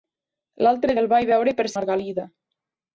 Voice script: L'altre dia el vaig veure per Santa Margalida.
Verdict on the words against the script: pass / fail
fail